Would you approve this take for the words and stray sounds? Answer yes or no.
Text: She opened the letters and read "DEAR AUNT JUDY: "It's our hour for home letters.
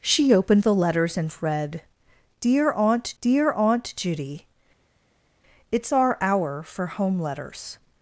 no